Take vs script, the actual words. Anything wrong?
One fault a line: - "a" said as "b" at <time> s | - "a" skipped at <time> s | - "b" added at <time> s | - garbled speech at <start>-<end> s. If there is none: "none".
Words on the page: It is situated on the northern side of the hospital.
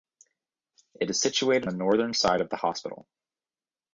- "on" skipped at 1.7 s